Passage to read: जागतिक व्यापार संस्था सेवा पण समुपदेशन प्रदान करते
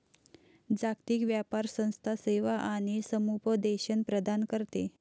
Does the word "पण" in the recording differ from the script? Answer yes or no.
yes